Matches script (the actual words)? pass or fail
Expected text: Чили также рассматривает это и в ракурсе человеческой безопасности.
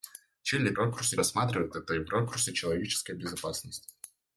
fail